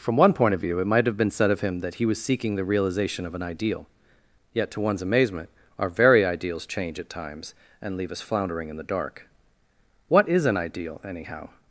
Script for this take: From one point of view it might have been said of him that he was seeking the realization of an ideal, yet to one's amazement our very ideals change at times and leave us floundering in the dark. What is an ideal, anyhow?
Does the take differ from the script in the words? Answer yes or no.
no